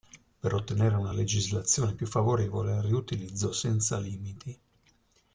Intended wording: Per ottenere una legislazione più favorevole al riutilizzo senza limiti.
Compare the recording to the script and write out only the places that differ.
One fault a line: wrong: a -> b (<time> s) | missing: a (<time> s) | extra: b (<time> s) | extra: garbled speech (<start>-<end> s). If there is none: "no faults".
no faults